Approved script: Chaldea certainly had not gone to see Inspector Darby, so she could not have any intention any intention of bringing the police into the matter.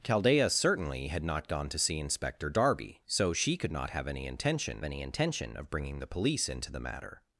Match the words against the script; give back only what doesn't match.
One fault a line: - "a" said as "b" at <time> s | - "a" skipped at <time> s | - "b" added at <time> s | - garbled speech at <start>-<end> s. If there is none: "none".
none